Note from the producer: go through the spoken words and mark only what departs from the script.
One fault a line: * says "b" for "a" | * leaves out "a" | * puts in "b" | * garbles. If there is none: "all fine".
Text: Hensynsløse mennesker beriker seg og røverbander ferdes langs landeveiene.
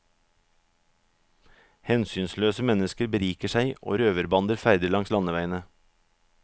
all fine